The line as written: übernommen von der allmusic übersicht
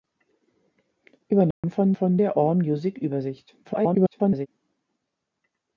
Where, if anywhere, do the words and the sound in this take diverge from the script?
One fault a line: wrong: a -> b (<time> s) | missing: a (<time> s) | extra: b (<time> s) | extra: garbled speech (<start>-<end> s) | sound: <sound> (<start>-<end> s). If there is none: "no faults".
sound: dropout (1.5-1.6 s)
extra: von (1.9 s)
extra: garbled speech (3.6-4.5 s)